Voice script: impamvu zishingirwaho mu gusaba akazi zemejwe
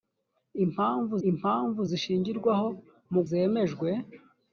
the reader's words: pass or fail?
fail